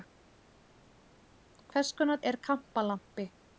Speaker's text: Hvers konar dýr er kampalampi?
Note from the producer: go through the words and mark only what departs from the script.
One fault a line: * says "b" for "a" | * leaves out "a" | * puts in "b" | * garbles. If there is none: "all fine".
* leaves out "dýr"